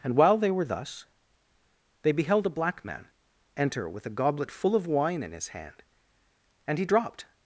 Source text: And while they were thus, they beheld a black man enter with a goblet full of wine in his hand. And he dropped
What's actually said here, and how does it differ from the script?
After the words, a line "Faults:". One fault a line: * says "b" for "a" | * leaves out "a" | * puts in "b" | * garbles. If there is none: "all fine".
And while they were thus, they beheld a black man enter with a goblet full of wine in his hand. And he dropped
Faults:
all fine